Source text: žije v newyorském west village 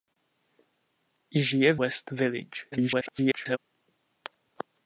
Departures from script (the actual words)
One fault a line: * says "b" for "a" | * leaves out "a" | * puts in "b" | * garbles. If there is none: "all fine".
* leaves out "newyorském"
* garbles